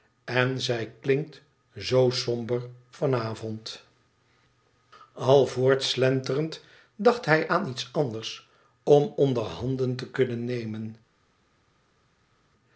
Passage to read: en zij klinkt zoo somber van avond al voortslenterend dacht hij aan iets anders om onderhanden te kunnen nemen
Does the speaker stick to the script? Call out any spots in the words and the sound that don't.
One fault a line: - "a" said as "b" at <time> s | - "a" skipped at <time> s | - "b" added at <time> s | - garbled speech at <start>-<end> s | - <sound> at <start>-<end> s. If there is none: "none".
none